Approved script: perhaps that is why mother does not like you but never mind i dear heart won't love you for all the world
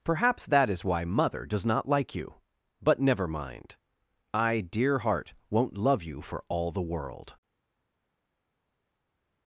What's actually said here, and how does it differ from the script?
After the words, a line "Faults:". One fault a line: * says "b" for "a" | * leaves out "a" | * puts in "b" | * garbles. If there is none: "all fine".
perhaps that is why mother does not like you but never mind i dear heart won't love you for all the world
Faults:
all fine